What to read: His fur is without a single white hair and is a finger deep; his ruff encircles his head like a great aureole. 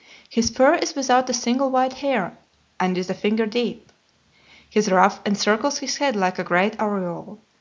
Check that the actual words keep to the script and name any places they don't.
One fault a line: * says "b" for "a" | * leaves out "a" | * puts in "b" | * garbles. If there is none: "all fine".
all fine